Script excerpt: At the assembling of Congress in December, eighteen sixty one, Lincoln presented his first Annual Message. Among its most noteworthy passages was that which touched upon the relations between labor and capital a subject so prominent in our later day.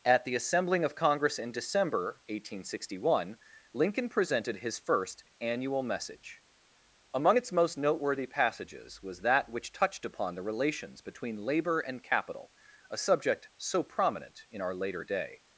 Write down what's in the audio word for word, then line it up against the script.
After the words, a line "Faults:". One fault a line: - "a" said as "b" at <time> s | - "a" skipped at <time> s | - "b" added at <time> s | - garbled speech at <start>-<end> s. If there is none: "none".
At the assembling of Congress in December, eighteen sixty one, Lincoln presented his first Annual Message. Among its most noteworthy passages was that which touched upon the relations between labor and capital a subject so prominent in our later day.
Faults:
none